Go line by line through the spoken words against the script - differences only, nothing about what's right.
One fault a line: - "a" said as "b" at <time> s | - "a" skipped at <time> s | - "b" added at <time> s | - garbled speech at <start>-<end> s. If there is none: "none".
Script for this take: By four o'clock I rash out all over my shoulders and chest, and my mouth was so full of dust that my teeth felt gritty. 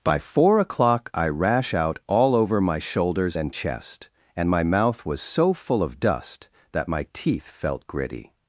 none